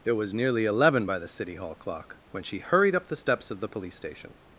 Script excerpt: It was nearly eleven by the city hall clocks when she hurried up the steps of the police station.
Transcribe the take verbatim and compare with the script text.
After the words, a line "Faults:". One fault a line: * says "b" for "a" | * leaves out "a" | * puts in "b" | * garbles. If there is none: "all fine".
It was nearly eleven by the city hall clock when she hurried up the steps of the police station.
Faults:
* says "clock" for "clocks"